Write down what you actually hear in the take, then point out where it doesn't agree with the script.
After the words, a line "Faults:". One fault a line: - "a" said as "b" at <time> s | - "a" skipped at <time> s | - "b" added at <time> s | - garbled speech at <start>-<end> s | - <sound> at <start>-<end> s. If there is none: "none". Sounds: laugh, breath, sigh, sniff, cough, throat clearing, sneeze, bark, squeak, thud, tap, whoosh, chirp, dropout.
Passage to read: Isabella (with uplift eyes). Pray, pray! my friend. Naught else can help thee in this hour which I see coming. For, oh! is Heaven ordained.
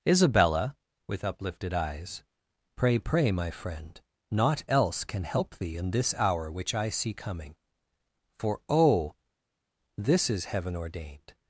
Isabella (with uplifted eyes). Pray, pray! my friend. Naught else can help thee in this hour which I see coming. For, oh! this is Heaven ordained.
Faults:
- "uplift" said as "uplifted" at 1.2 s
- "this" added at 10.0 s